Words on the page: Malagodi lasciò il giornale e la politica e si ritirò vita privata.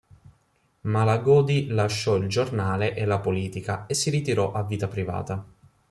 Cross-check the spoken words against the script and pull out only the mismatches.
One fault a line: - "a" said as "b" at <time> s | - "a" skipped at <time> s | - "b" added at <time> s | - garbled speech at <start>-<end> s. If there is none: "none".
- "a" added at 4.5 s